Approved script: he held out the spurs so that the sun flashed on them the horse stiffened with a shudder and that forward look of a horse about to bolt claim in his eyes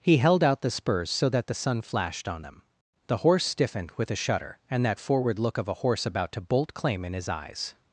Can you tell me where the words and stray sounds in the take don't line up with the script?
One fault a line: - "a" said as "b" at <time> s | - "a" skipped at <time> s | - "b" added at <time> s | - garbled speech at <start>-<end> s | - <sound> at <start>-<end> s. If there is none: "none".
none